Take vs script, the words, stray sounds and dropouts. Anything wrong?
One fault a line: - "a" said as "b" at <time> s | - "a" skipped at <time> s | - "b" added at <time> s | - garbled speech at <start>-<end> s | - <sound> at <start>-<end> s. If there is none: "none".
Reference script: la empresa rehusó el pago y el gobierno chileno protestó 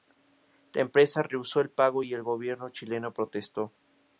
none